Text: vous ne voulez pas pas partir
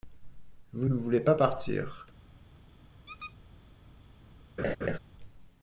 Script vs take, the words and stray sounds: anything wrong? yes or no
yes